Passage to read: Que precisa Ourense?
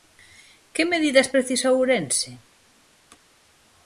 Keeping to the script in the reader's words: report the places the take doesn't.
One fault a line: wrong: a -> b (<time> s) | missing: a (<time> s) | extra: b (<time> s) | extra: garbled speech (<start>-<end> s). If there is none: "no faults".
extra: medidas (0.9 s)